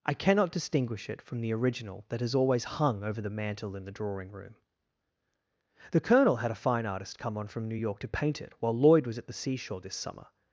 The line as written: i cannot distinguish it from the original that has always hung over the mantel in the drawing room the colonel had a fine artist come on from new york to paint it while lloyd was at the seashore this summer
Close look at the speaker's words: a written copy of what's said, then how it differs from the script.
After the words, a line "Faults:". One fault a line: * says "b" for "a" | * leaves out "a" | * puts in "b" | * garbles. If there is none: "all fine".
i cannot distinguish it from the original that has always hung over the mantel in the drawing room the colonel had a fine artist come on from new york to paint it while lloyd was at the seashore this summer
Faults:
all fine